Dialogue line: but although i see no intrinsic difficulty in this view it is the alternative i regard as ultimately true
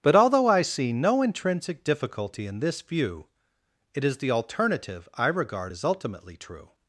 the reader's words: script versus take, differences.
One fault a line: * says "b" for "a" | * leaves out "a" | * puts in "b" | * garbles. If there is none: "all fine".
all fine